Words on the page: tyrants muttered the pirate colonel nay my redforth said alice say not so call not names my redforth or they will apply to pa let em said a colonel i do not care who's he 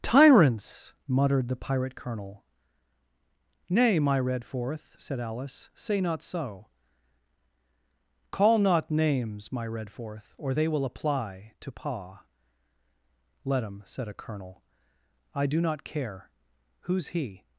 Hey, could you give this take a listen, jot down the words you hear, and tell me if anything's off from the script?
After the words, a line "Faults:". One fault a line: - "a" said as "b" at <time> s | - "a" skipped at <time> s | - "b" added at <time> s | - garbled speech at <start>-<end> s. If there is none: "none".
tyrants muttered the pirate colonel nay my redforth said alice say not so call not names my redforth or they will apply to pa let em said a colonel i do not care who's he
Faults:
none